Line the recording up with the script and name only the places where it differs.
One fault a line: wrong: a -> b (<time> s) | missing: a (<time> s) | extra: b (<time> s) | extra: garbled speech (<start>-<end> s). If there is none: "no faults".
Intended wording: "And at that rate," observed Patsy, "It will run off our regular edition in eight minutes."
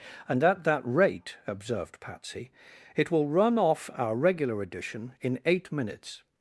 no faults